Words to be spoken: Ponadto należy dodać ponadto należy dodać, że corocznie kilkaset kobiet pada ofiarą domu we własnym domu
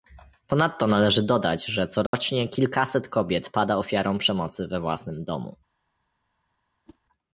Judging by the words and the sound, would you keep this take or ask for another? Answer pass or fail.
fail